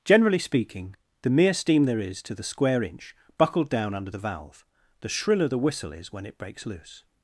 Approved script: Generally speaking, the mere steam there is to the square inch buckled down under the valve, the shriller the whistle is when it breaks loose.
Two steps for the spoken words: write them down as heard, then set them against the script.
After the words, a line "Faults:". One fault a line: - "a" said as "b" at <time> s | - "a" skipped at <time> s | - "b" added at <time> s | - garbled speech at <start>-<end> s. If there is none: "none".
Generally speaking, the mere steam there is to the square inch buckled down under the valve, the shriller the whistle is when it breaks loose.
Faults:
none